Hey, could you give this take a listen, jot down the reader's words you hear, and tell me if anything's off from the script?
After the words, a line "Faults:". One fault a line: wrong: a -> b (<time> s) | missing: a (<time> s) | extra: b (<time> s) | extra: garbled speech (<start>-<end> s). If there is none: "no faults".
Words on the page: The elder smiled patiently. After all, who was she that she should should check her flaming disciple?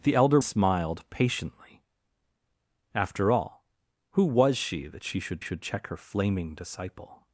The elder smiled patiently. After all, who was she that she should should check her flaming disciple?
Faults:
no faults